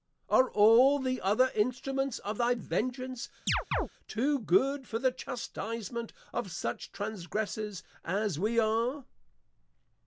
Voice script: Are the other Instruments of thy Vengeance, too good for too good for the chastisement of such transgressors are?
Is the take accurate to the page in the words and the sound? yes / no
no